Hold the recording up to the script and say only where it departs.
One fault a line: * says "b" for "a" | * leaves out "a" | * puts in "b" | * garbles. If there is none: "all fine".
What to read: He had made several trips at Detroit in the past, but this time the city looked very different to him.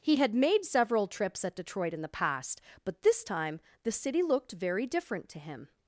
all fine